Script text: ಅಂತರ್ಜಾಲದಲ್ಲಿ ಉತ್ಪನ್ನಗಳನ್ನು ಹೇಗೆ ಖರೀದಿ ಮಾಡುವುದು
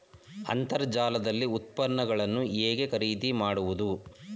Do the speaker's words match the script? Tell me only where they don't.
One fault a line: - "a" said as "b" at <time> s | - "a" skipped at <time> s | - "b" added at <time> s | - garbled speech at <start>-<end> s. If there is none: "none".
none